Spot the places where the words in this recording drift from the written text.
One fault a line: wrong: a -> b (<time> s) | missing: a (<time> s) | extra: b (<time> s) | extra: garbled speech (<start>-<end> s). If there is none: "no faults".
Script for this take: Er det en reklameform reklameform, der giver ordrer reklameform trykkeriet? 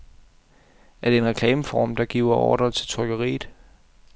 missing: reklameform (1.9 s)
wrong: reklameform -> til (2.7 s)